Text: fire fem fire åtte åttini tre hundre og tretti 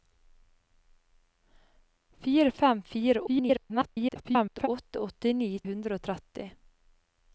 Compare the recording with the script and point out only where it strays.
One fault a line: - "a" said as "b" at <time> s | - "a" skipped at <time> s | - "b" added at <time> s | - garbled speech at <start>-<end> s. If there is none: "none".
- garbled speech at 3.3-4.7 s
- "tre" skipped at 5.5 s